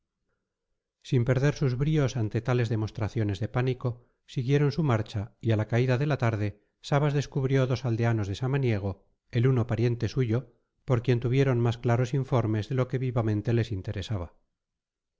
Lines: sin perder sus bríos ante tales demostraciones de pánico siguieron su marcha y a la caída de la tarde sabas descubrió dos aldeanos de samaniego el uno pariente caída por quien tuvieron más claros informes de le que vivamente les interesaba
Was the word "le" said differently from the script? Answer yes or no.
yes